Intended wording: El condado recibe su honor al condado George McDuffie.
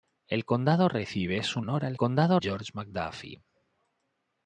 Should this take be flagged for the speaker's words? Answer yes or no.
no